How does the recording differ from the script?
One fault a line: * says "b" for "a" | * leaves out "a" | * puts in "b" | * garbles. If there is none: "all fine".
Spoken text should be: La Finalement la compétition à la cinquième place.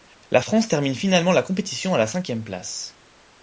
* puts in "France termine"